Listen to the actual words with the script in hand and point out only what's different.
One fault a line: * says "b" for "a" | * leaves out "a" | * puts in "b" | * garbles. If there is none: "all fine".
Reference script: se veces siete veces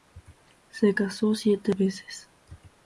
* says "casó" for "veces"